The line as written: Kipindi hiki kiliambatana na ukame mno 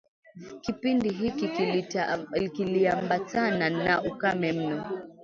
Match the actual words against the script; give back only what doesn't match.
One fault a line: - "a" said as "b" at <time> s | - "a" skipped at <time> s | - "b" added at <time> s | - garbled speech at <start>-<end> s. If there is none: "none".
none